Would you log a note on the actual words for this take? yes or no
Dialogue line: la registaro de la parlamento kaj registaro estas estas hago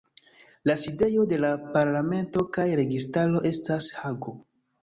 yes